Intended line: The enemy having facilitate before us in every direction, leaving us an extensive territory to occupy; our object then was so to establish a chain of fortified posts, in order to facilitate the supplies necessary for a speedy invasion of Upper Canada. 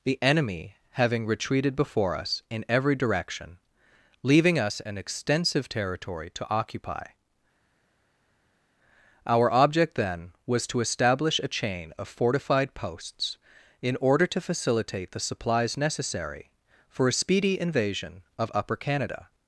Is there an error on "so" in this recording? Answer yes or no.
yes